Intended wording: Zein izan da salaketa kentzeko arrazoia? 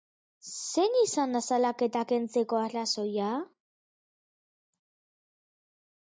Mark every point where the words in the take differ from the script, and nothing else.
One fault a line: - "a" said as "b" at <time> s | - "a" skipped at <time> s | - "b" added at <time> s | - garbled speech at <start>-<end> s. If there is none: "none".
none